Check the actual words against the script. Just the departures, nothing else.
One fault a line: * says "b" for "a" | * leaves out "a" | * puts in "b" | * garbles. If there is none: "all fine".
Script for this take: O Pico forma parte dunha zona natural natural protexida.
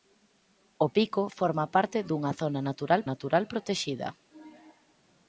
all fine